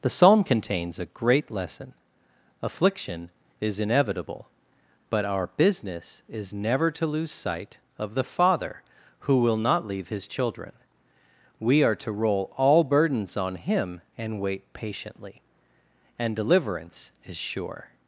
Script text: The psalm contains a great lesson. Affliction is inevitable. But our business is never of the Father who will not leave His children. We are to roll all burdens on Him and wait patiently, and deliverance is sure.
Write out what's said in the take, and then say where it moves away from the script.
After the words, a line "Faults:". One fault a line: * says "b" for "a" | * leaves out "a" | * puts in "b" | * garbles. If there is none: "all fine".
The psalm contains a great lesson. Affliction is inevitable. But our business is never to lose sight of the Father who will not leave His children. We are to roll all burdens on Him and wait patiently, and deliverance is sure.
Faults:
* puts in "to lose sight"